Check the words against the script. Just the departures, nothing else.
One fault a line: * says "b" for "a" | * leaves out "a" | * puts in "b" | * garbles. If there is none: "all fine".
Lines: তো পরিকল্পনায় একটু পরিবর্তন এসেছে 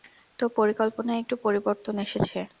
all fine